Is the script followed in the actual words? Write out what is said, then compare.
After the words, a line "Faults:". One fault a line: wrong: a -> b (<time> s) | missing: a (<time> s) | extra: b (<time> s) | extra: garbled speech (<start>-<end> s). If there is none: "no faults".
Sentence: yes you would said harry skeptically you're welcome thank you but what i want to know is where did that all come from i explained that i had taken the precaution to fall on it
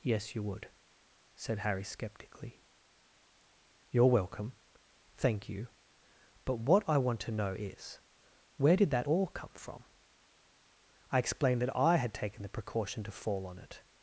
yes you would said harry skeptically you're welcome thank you but what i want to know is where did that all come from i explained that i had taken the precaution to fall on it
Faults:
no faults